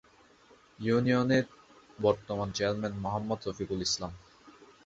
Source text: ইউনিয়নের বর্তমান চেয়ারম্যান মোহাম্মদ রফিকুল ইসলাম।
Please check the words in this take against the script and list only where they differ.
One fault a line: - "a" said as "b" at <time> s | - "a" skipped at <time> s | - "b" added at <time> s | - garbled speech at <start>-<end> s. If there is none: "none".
none